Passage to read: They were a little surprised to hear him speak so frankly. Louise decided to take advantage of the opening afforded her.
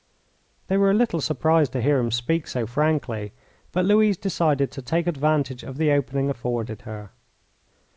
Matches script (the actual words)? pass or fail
fail